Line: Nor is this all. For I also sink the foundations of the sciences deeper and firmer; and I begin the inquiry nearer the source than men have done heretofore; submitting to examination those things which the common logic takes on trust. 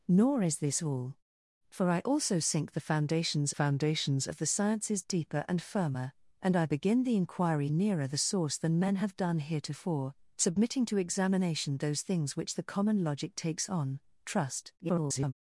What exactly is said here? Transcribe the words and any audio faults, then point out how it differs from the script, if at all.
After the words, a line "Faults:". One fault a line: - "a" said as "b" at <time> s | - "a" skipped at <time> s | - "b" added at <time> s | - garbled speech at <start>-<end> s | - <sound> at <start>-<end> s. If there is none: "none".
Nor is this all. For I also sink the foundations foundations of the sciences deeper and firmer; and I begin the inquiry nearer the source than men have done heretofore; submitting to examination those things which the common logic takes on trust. [garbled]
Faults:
- "foundations" added at 3.5 s
- garbled speech at 14.8-15.3 s